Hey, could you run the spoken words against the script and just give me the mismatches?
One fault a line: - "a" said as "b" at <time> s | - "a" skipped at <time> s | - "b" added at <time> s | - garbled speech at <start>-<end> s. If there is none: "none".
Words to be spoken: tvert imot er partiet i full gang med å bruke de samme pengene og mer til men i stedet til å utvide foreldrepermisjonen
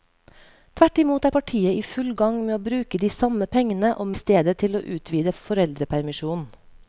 - "mer til men" skipped at 4.1 s